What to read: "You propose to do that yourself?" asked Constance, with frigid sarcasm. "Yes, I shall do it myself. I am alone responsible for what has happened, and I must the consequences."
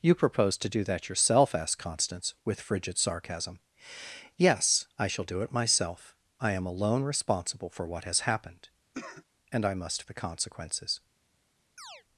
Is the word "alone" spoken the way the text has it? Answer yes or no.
yes